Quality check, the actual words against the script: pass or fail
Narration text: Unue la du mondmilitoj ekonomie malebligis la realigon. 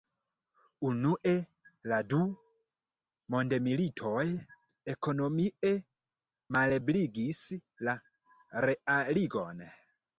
pass